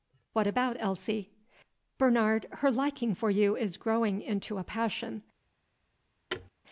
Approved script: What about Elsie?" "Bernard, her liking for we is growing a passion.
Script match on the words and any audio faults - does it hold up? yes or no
no